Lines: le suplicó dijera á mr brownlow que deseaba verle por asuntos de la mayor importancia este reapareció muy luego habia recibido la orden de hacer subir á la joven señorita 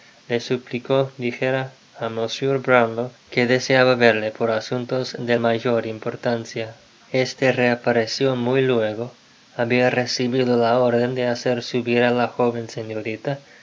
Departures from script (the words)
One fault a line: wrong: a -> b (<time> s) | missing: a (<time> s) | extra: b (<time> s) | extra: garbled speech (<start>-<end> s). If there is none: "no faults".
missing: la (5.4 s)